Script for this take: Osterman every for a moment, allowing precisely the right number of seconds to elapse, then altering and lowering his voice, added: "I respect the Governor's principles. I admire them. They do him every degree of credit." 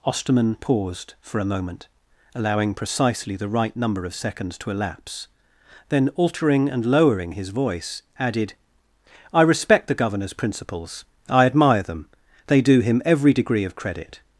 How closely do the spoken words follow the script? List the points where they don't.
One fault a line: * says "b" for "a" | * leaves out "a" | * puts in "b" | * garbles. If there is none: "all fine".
* says "paused" for "every"